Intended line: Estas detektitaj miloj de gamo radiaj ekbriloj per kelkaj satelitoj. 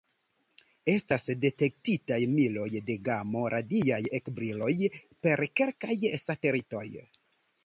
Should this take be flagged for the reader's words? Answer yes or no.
no